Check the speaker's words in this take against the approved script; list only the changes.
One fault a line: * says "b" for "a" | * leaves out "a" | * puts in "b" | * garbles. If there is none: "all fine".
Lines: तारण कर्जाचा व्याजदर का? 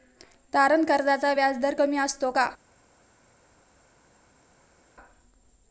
* puts in "कमी असतो"